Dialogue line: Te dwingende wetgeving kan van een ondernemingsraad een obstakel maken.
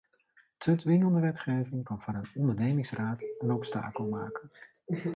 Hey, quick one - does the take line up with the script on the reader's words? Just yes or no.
yes